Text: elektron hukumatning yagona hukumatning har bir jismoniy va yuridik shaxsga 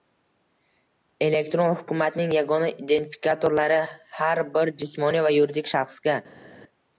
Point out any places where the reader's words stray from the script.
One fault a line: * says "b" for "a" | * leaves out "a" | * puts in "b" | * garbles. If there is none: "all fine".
* says "identifikatorlari" for "hukumatning"